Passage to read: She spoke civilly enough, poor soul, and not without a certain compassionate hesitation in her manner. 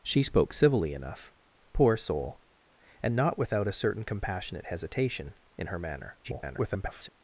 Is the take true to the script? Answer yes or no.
no